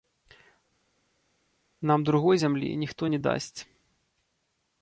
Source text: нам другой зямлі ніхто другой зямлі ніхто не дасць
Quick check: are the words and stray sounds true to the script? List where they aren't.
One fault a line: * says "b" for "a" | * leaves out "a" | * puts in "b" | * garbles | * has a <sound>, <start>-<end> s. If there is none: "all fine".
* leaves out "другой зямлі ніхто"